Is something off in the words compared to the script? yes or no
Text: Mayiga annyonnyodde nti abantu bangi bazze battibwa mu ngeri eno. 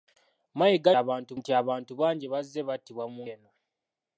yes